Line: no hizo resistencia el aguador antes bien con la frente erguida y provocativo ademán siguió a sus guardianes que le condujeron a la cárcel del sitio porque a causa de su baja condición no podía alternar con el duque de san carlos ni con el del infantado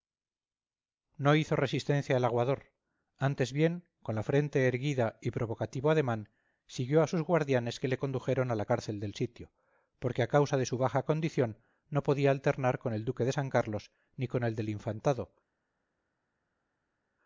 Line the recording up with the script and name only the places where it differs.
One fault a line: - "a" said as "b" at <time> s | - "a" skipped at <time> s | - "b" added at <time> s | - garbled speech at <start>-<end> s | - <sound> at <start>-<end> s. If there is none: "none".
none